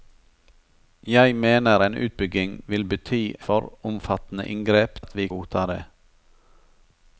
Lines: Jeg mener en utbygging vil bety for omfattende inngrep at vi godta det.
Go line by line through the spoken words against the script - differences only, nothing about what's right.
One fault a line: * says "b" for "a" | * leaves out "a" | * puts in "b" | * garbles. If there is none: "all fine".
all fine